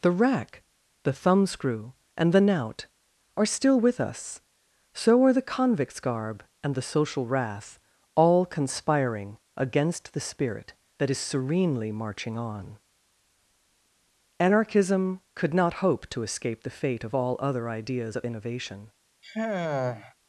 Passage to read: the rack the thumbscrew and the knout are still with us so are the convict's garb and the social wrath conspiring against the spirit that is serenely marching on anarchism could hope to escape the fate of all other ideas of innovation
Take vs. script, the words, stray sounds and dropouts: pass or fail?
fail